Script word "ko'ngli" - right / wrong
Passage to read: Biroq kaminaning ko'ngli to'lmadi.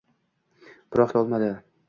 wrong